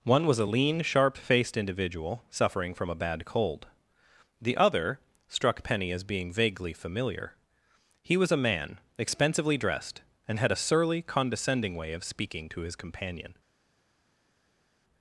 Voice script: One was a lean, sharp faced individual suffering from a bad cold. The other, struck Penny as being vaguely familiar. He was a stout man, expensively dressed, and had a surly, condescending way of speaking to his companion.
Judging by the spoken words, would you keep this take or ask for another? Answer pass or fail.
fail